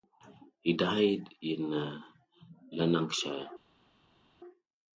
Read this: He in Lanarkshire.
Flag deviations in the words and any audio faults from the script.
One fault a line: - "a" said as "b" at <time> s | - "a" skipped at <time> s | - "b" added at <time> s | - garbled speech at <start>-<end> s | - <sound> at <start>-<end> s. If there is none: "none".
- "died" added at 0.7 s